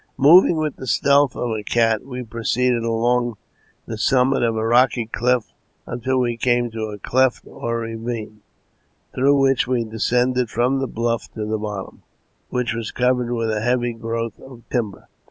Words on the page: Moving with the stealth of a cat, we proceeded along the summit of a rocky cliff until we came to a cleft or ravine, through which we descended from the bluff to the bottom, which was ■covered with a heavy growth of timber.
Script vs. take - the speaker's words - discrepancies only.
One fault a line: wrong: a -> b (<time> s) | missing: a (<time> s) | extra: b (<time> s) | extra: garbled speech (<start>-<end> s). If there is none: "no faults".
no faults